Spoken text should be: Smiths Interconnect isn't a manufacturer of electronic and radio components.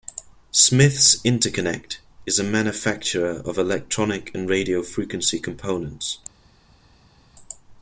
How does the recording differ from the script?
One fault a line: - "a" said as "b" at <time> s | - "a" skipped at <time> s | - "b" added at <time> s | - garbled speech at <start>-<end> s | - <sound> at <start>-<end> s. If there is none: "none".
- "isn't" said as "is" at 2.2 s
- "frequency" added at 4.8 s